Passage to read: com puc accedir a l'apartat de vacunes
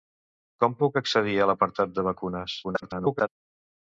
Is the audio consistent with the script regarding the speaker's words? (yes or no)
no